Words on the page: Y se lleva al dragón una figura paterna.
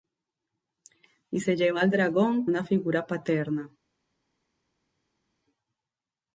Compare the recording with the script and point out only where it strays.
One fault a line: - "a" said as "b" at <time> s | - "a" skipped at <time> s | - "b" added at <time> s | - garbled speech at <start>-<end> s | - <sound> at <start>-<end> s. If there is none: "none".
none